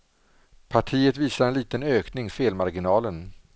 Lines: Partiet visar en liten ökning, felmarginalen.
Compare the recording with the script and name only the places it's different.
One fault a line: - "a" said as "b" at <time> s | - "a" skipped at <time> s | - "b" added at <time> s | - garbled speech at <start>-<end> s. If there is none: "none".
none